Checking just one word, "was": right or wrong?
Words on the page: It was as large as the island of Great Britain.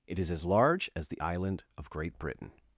wrong